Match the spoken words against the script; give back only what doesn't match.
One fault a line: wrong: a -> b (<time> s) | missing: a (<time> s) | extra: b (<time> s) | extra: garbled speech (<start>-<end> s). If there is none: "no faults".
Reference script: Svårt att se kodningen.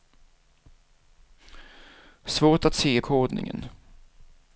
no faults